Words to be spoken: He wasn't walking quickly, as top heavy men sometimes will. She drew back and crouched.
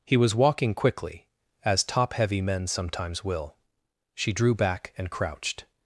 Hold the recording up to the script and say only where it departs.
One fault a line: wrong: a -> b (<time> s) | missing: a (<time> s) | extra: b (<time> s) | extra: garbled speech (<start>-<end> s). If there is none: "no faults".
wrong: wasn't -> was (0.2 s)